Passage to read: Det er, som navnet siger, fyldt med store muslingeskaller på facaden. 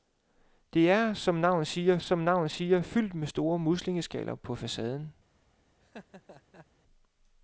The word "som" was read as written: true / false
true